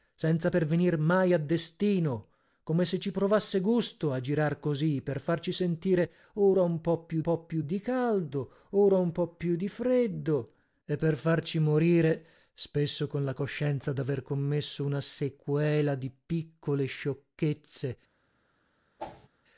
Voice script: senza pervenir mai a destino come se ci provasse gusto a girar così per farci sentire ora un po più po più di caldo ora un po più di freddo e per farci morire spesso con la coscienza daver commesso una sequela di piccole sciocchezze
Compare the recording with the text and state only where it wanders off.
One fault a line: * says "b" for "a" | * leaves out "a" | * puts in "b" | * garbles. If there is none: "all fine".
all fine